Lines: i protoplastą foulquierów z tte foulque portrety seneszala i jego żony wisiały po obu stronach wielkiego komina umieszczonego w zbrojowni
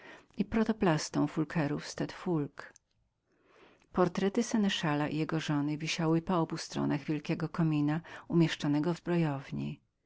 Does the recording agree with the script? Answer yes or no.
yes